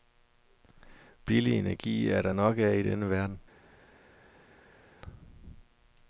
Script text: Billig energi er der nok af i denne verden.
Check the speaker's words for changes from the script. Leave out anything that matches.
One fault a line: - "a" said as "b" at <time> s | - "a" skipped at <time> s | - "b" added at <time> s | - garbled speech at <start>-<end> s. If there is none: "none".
none